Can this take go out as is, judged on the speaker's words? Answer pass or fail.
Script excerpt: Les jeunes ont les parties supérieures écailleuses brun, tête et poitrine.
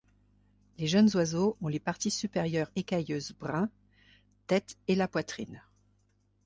fail